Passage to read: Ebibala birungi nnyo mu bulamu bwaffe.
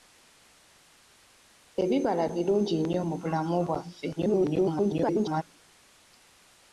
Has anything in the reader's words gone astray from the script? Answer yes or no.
yes